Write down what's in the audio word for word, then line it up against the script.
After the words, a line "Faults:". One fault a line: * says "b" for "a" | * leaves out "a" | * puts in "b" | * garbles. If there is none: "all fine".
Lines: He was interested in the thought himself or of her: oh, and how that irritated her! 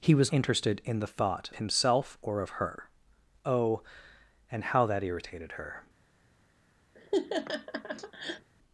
He was interested in the thought himself or of her: oh, and how that irritated her!
Faults:
all fine